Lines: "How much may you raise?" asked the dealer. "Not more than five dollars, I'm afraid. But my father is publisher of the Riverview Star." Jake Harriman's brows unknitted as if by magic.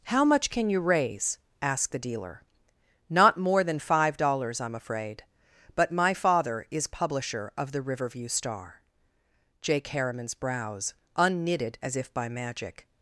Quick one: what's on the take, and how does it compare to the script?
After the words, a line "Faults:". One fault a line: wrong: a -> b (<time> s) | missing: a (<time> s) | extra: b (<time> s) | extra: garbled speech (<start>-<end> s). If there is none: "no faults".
"How much can you raise?" asked the dealer. "Not more than five dollars, I'm afraid. But my father is publisher of the Riverview Star." Jake Harriman's brows unknitted as if by magic.
Faults:
wrong: may -> can (0.5 s)